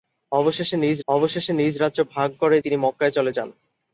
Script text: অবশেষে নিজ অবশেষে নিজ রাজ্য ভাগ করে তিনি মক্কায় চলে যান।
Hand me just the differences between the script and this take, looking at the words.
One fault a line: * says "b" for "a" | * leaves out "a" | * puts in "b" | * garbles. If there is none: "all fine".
all fine